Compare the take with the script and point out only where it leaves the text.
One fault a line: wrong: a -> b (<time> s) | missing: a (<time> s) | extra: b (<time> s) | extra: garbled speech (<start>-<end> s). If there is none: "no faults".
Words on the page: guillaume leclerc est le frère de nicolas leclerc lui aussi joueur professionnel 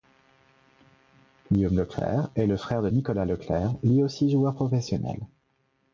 no faults